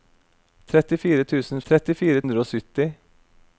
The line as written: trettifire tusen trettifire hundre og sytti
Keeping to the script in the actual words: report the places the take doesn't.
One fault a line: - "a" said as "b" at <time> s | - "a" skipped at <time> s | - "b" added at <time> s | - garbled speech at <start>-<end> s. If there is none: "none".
none